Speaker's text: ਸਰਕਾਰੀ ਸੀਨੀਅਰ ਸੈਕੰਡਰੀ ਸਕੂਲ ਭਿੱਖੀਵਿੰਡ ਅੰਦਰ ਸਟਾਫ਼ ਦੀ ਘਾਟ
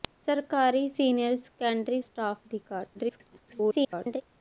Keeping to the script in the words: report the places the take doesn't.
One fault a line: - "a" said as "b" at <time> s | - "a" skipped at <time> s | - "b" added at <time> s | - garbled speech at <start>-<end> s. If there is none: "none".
- "ਸਕੂਲ ਭਿੱਖੀਵਿੰਡ ਅੰਦਰ" skipped at 2.0 s
- garbled speech at 2.9-4.2 s